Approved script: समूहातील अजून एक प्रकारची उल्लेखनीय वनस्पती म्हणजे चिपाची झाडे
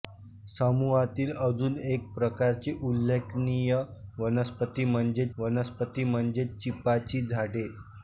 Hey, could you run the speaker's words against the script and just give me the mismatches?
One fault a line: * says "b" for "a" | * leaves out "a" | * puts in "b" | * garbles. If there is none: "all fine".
* puts in "वनस्पती म्हणजे"